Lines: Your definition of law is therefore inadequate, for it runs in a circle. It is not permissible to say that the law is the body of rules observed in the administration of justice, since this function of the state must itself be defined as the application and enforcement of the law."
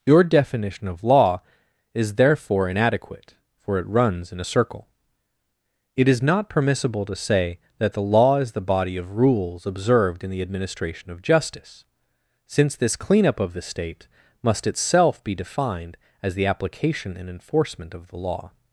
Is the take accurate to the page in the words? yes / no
no